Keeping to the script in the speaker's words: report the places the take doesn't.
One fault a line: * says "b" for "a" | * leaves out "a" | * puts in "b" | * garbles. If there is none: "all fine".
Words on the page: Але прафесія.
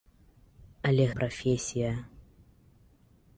all fine